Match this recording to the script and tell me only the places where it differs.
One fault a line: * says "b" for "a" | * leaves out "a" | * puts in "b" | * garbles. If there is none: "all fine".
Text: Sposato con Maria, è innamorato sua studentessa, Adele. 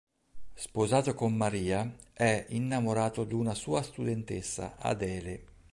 * puts in "d'una"